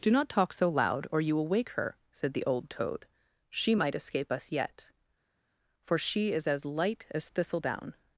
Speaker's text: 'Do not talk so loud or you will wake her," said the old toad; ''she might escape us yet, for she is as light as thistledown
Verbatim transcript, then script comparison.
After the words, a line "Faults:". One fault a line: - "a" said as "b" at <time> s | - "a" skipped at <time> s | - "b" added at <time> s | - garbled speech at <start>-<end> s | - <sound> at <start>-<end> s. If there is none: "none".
'Do not talk so loud or you will wake her," said the old toad; ''she might escape us yet, for she is as light as thistledown
Faults:
none